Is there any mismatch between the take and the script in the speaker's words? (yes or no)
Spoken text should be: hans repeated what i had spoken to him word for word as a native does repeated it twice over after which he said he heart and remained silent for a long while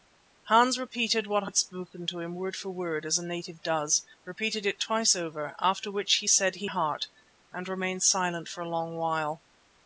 no